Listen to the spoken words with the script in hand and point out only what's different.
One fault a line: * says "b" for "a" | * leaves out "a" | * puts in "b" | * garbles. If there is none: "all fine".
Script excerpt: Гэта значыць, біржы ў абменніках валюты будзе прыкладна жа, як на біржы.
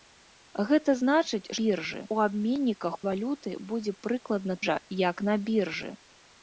all fine